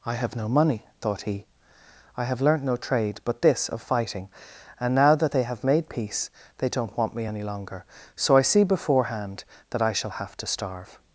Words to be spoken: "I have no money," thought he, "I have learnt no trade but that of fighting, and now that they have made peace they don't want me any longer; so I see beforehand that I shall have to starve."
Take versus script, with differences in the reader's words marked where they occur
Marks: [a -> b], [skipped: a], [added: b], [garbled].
"I have no money," thought he, "I have learnt no trade but [that -> this] of fighting, and now that they have made peace they don't want me any longer; so I see beforehand that I shall have to starve."